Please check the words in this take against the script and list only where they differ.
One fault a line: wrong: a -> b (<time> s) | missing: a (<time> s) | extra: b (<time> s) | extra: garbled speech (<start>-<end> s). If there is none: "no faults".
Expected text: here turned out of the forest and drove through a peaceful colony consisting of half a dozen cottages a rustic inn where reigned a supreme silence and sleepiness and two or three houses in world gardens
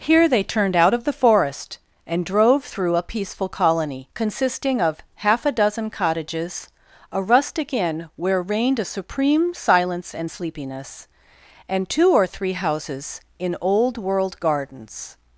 extra: they (0.3 s)
extra: old (13.6 s)